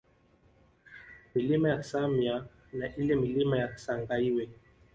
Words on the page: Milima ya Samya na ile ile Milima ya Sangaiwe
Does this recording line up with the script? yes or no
no